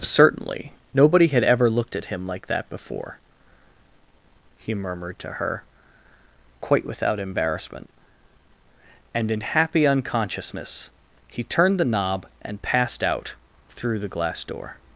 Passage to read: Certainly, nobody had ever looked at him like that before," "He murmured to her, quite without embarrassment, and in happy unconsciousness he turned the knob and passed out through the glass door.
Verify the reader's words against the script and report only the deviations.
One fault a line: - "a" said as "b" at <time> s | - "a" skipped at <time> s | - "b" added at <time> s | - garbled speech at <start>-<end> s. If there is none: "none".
none